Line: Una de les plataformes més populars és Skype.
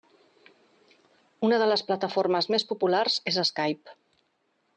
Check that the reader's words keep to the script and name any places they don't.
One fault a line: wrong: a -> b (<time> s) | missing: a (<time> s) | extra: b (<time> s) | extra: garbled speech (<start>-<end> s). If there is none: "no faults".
no faults